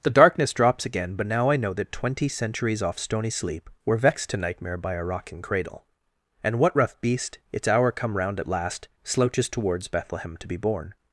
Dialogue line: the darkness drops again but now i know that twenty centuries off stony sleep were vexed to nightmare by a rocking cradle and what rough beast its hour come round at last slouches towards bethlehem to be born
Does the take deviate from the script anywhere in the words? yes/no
no